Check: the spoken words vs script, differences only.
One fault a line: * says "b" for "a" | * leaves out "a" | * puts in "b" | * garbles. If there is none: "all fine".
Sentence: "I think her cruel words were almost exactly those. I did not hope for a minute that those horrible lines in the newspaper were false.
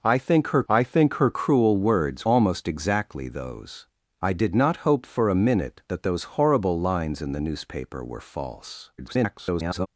* puts in "I think her"
* leaves out "were"
* garbles